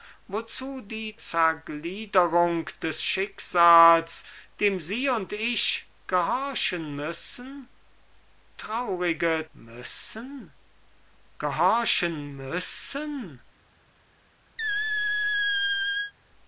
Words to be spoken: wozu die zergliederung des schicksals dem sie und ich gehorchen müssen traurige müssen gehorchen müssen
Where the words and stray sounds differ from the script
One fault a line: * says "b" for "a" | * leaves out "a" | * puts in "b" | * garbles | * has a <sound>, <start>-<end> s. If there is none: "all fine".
* has a squeak, 14.6-16.1 s